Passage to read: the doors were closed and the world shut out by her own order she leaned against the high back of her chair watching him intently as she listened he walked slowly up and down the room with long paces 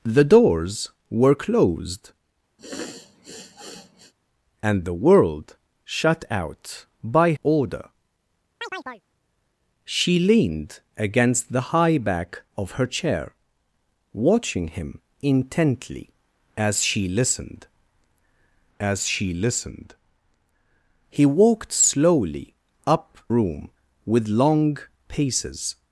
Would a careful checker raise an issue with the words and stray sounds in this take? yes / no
yes